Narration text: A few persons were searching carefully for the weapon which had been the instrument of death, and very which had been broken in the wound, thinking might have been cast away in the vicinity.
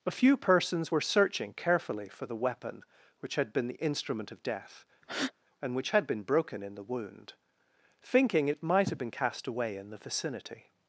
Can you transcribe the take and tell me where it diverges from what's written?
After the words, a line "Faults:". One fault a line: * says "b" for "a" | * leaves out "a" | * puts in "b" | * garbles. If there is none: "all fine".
A few persons were searching carefully for the weapon which had been the instrument of death, and which had been broken in the wound, thinking it might have been cast away in the vicinity.
Faults:
* leaves out "very"
* puts in "it"